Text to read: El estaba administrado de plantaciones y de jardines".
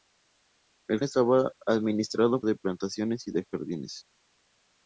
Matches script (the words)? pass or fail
pass